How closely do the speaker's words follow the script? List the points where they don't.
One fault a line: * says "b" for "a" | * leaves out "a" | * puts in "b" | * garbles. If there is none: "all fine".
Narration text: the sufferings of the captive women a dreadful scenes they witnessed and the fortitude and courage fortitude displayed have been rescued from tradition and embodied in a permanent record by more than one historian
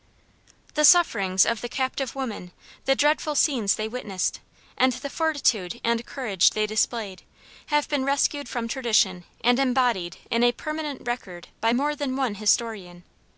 * says "the" for "a"
* says "they" for "fortitude"